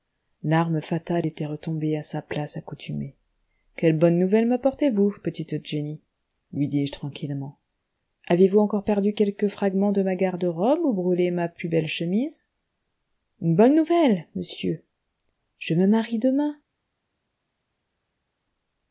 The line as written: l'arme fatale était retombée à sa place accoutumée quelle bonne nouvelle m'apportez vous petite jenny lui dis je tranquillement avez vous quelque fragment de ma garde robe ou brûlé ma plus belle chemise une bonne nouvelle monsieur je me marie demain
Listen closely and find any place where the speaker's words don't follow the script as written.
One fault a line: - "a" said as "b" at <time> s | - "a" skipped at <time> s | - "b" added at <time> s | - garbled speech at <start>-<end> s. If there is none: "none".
- "encore perdu" added at 8.6 s